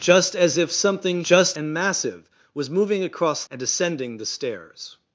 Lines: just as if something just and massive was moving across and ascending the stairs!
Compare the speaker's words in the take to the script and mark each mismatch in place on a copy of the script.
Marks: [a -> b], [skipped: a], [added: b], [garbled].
just as if something just and massive was moving across and ascending the stairs!